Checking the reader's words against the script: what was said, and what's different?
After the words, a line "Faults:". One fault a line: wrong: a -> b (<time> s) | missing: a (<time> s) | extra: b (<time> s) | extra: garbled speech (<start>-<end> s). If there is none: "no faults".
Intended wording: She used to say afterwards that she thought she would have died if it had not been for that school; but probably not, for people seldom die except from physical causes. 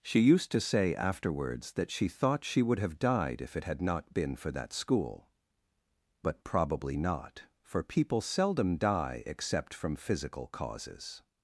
She used to say afterwards that she thought she would have died if it had not been for that school; but probably not, for people seldom die except from physical causes.
Faults:
no faults